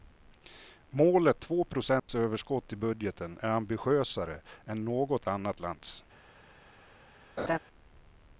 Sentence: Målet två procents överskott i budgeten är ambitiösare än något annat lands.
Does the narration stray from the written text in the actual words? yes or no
no